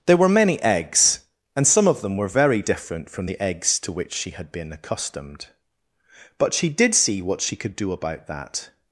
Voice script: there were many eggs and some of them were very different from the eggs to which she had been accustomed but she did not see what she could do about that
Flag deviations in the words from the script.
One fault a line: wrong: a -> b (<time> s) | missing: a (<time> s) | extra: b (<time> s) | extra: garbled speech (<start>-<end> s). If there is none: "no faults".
missing: not (6.9 s)